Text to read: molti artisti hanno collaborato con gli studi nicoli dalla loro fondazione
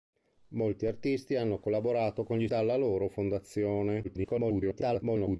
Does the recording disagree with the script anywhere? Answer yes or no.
yes